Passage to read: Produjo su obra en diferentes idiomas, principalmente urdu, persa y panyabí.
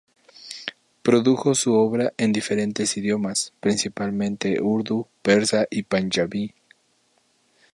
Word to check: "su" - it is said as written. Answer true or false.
true